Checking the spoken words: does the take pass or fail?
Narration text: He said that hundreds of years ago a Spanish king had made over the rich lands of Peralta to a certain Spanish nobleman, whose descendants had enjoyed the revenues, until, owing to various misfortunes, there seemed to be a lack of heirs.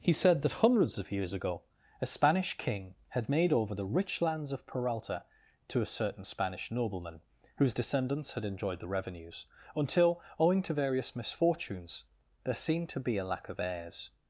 pass